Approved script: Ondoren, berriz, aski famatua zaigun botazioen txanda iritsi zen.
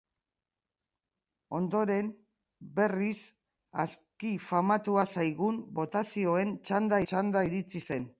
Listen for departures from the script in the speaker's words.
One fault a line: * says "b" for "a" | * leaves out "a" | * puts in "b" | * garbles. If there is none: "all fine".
* puts in "txanda"